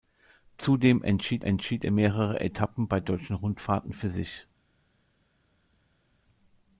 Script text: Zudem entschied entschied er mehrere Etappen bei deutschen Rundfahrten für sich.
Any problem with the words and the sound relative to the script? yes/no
no